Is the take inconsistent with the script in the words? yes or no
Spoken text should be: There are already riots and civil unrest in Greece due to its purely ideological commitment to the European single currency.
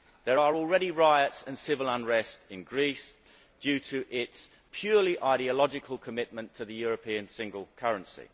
no